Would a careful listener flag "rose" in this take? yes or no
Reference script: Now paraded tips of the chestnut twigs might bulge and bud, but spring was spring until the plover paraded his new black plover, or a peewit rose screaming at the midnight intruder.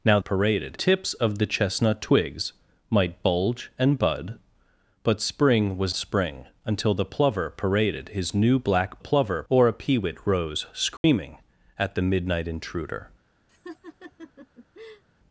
no